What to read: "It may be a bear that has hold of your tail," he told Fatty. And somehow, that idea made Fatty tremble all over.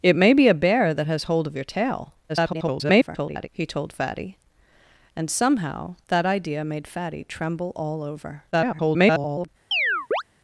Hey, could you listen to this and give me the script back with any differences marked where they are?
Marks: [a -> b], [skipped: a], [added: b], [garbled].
"It may be a bear that has hold of your tail," [garbled] he told Fatty. And somehow, that idea made Fatty tremble all over. [garbled]